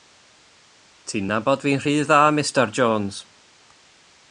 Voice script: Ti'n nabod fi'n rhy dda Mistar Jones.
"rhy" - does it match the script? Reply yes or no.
yes